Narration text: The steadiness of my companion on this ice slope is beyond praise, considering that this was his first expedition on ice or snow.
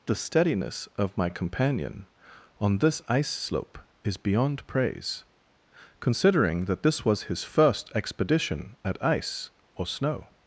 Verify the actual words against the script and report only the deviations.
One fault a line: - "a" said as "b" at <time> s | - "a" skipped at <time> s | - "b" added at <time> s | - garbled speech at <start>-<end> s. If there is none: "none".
- "on" said as "at" at 8.8 s